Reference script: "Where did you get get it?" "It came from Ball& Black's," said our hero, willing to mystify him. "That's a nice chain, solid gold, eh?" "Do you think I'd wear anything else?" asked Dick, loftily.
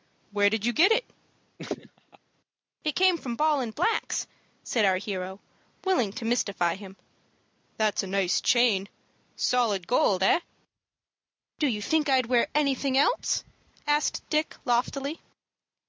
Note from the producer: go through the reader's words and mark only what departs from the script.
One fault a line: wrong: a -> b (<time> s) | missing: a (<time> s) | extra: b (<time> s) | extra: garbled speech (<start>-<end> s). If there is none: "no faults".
missing: get (0.9 s)